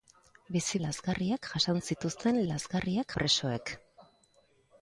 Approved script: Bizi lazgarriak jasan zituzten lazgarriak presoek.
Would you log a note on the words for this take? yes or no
no